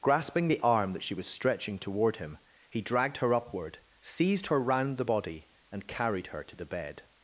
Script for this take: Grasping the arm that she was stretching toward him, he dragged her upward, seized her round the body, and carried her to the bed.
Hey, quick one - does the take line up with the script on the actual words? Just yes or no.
yes